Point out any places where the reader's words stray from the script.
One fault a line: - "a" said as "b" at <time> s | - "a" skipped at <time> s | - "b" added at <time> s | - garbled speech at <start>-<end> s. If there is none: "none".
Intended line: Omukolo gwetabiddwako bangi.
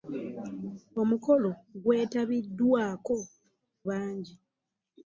none